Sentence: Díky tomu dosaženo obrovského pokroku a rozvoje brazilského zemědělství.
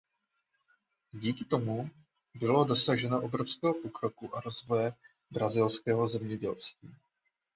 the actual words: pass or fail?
fail